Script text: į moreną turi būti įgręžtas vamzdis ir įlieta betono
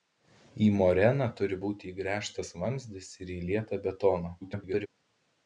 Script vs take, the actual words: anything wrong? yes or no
yes